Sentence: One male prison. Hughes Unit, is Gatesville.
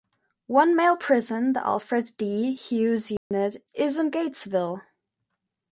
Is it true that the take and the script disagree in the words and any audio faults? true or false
true